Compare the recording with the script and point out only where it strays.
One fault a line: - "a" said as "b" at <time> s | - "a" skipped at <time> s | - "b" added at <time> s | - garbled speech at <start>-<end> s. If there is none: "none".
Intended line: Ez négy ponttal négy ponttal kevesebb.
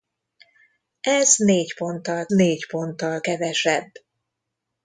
none